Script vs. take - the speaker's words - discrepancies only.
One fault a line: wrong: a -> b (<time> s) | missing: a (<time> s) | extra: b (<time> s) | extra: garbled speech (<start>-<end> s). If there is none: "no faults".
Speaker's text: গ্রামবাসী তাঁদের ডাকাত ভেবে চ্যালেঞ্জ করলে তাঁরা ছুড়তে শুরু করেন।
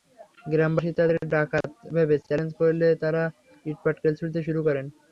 extra: ইটপাটকেল (3.7 s)